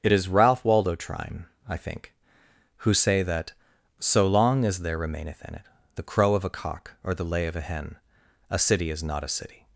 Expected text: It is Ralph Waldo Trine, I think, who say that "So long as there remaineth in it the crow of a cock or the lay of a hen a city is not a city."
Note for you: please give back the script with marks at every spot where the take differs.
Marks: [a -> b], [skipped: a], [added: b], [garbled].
It is Ralph Waldo Trine, I think, who say that "So long as there remaineth in it the crow of a cock or the lay of a hen a city is not a city."